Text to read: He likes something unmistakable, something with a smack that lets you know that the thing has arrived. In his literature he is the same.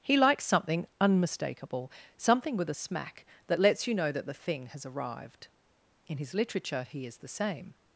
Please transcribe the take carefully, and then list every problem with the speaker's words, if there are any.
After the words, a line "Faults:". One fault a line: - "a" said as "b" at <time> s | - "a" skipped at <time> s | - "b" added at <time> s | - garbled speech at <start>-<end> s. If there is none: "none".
He likes something unmistakable, something with a smack that lets you know that the thing has arrived. In his literature he is the same.
Faults:
none